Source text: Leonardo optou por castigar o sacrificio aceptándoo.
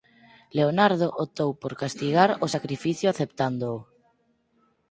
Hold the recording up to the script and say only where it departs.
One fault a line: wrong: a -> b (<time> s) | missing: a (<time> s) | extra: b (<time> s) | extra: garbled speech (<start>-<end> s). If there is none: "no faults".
no faults